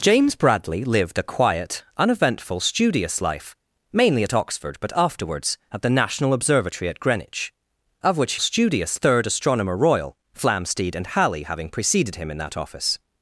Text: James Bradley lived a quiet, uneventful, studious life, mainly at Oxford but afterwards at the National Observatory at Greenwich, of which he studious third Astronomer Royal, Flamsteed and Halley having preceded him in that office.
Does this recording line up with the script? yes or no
yes